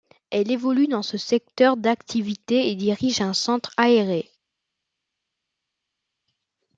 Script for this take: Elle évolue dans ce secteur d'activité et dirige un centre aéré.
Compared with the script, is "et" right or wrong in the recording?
right